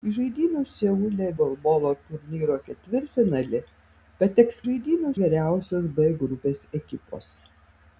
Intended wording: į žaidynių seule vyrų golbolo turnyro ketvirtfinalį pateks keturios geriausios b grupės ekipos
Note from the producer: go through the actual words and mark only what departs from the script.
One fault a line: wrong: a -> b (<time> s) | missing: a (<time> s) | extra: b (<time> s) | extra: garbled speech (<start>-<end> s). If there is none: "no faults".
missing: vyrų (1.2 s)
wrong: keturios -> žaidynių (4.6 s)